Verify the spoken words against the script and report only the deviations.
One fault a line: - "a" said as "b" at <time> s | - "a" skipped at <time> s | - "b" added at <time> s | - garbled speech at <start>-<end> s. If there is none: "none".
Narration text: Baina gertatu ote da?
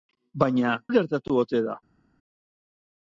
none